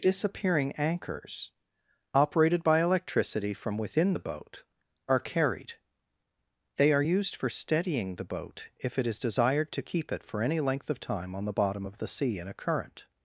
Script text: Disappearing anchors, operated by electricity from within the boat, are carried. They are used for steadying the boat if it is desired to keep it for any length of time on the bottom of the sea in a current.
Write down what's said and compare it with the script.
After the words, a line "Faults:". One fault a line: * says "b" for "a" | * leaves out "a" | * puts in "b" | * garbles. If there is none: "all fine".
Disappearing anchors, operated by electricity from within the boat, are carried. They are used for steadying the boat if it is desired to keep it for any length of time on the bottom of the sea in a current.
Faults:
all fine